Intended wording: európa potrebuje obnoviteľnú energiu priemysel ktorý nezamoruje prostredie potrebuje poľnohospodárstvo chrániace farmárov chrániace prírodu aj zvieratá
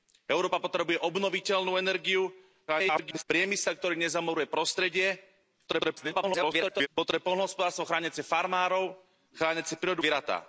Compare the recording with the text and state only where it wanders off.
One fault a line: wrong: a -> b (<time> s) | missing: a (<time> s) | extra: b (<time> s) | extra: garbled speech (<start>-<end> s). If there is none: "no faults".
extra: garbled speech (2.7-3.2 s)
extra: garbled speech (5.7-6.9 s)
missing: aj (10.0 s)